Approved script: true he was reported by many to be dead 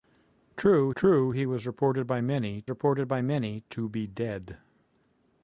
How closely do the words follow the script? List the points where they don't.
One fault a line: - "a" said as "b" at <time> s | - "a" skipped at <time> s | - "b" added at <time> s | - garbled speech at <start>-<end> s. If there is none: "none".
- "true" added at 1.0 s
- "reported by many" added at 2.7 s